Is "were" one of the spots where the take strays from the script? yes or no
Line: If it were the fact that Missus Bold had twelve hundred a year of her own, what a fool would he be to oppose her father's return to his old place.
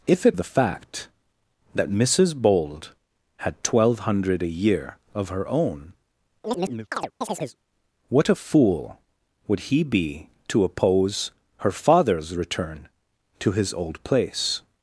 yes